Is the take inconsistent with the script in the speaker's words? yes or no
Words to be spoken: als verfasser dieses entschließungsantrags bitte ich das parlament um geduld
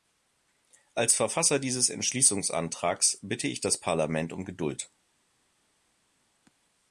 no